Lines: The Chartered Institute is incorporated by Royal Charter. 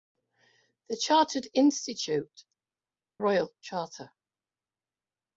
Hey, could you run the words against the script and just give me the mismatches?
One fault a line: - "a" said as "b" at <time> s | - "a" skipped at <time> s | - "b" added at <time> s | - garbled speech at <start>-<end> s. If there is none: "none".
- "is incorporated by" skipped at 2.5 s